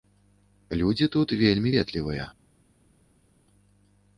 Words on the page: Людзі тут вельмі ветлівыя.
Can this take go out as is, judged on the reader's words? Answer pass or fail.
pass